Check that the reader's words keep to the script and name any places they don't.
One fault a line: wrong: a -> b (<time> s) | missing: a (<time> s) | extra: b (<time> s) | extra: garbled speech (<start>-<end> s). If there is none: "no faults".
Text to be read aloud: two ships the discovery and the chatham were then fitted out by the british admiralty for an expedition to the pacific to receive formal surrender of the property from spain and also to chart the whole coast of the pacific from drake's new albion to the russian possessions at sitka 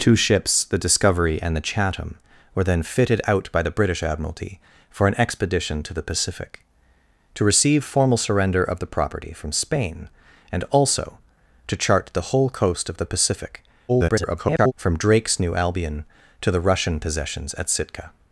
extra: garbled speech (13.9-14.7 s)